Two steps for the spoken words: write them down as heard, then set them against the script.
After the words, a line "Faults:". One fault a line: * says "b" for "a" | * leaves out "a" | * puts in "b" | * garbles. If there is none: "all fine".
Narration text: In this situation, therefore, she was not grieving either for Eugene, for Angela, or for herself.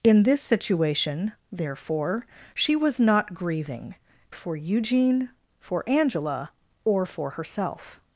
In this situation, therefore, she was not grieving for Eugene, for Angela, or for herself.
Faults:
* leaves out "either"